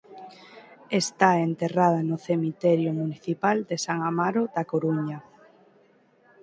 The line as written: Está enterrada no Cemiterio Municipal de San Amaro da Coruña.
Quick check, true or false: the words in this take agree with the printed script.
true